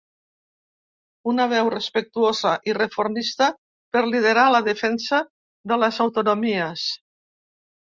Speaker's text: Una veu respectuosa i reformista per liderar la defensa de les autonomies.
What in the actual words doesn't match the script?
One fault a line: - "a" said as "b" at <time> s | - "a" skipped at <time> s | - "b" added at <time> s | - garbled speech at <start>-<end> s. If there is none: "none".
none